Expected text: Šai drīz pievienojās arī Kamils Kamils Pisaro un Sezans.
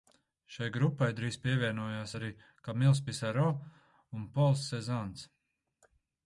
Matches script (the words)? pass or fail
fail